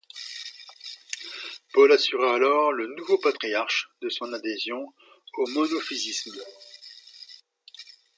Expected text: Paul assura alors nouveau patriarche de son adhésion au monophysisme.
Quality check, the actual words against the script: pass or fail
fail